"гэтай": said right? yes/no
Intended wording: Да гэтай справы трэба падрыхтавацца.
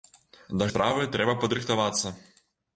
no